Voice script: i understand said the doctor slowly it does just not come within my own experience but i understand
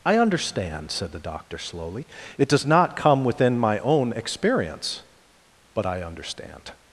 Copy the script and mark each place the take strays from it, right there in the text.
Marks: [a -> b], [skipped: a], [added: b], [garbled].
i understand said the doctor slowly it does [skipped: just] not come within my own experience but i understand